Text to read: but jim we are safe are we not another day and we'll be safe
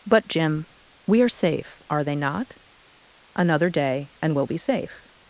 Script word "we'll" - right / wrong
right